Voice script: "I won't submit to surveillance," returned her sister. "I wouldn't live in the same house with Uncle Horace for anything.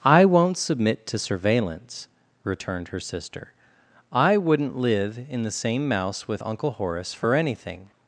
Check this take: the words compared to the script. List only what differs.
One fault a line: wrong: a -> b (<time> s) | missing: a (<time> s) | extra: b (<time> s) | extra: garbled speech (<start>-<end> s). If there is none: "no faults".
wrong: house -> mouse (5.9 s)